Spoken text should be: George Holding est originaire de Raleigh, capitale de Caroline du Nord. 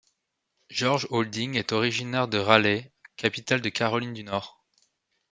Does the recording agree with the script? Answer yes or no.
yes